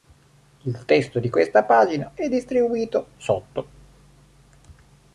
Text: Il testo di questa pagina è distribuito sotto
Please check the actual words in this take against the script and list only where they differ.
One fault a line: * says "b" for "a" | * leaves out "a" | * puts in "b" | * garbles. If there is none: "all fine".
all fine